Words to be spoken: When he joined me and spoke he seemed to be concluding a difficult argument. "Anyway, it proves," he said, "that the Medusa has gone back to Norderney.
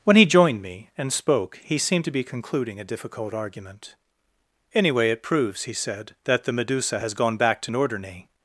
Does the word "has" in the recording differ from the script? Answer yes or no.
no